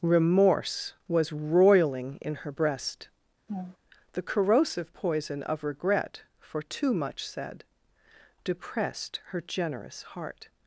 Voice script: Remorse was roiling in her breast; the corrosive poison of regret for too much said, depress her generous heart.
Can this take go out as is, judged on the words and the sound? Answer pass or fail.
fail